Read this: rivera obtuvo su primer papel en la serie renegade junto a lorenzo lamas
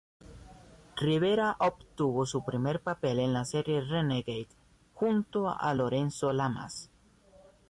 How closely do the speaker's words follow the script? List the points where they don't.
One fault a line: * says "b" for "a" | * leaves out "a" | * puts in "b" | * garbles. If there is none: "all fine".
all fine